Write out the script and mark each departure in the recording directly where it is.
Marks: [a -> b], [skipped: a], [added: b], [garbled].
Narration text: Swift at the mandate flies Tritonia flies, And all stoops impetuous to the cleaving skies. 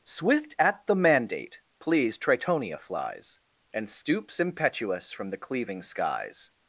Swift at the mandate [flies -> pleased] Tritonia flies, And [skipped: all] stoops impetuous [to -> from] the cleaving skies.